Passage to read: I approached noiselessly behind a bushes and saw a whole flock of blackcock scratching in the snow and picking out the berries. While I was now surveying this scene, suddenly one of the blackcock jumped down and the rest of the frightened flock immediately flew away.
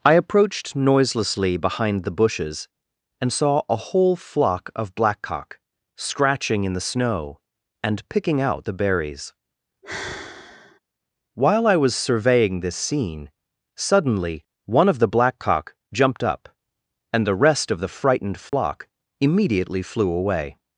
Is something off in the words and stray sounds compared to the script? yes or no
yes